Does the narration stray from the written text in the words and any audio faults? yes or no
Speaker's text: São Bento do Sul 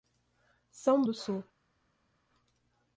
yes